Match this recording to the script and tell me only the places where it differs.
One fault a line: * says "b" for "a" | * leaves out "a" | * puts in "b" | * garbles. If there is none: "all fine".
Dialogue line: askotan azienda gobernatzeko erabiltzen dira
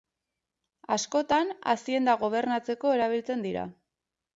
all fine